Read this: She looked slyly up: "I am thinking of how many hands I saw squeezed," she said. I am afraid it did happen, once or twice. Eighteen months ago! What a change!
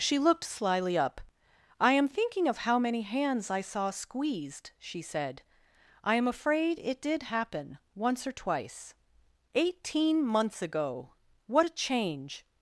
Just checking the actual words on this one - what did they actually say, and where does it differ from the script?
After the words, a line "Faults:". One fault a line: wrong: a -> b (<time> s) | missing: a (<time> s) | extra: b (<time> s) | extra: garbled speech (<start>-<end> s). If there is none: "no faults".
She looked slyly up: "I am thinking of how many hands I saw squeezed," she said. I am afraid it did happen, once or twice. Eighteen months ago! What a change!
Faults:
no faults